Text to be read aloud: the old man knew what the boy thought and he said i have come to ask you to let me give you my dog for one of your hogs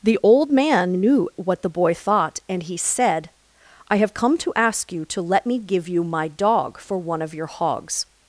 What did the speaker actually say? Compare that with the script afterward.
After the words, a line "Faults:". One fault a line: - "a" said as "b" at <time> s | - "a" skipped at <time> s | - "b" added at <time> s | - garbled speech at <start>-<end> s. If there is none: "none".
the old man knew what the boy thought and he said i have come to ask you to let me give you my dog for one of your hogs
Faults:
none